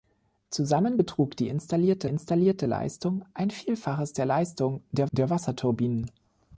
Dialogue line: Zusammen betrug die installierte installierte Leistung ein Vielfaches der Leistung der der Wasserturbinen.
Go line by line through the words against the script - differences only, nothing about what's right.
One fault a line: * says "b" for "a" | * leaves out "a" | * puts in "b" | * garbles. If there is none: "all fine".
all fine